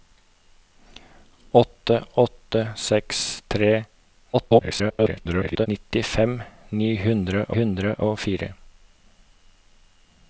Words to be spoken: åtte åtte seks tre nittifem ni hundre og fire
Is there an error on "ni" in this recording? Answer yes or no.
no